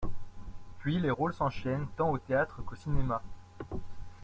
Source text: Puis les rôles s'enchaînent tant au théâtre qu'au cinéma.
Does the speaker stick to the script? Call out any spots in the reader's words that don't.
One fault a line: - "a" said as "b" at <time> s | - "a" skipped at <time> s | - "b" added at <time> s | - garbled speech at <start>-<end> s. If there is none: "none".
none